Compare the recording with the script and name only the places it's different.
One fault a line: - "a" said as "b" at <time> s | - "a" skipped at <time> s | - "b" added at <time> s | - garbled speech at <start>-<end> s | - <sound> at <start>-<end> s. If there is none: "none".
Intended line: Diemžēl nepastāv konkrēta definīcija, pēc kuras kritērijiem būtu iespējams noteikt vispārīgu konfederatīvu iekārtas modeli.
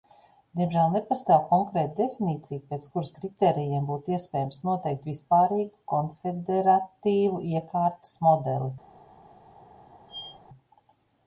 - squeak at 10.1-10.4 s